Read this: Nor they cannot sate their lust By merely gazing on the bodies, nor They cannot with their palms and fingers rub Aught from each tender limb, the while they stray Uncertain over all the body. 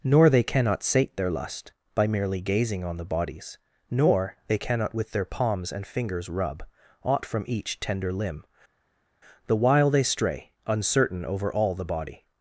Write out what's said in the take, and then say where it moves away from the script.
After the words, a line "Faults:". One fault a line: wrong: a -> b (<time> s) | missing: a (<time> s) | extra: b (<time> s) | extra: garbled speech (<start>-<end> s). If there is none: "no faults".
Nor they cannot sate their lust By merely gazing on the bodies, nor They cannot with their palms and fingers rub Aught from each tender limb, the while they stray Uncertain over all the body.
Faults:
no faults